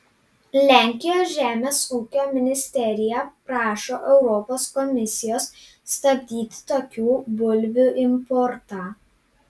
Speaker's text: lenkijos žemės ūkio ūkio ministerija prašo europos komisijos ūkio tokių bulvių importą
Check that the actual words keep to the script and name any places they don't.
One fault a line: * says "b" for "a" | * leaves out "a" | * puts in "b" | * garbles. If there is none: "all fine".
* leaves out "ūkio"
* says "stabdyti" for "ūkio"